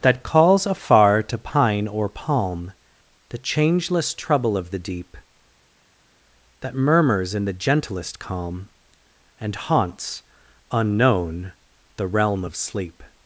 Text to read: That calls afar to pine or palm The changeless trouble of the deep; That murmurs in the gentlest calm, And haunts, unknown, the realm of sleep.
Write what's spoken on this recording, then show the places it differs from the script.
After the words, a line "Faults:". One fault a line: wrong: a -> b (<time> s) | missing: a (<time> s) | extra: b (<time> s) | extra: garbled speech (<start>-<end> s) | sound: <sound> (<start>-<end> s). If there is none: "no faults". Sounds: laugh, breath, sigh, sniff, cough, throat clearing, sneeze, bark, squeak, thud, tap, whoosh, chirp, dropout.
That calls afar to pine or palm The changeless trouble of the deep; That murmurs in the gentlest calm, And haunts, unknown, the realm of sleep.
Faults:
no faults